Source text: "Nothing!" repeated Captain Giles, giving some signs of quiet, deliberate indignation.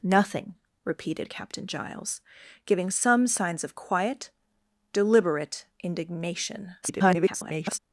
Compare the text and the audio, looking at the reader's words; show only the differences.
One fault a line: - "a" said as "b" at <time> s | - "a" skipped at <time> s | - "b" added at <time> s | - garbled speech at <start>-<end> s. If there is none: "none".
- garbled speech at 6.8-7.8 s